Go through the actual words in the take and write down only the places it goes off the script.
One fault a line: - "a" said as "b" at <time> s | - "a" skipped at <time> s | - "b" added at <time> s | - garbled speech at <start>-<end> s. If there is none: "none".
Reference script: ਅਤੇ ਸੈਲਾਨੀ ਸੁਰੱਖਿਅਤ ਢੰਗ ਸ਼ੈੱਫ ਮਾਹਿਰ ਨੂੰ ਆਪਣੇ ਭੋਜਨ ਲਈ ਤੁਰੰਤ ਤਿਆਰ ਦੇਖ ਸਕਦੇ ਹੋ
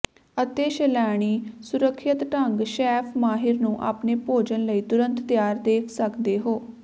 none